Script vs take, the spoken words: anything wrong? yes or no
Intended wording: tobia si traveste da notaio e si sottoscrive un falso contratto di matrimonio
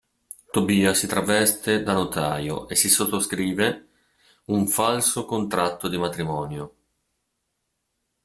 no